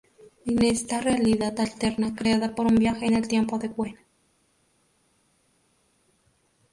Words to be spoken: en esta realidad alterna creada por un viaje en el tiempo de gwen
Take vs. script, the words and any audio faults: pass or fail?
pass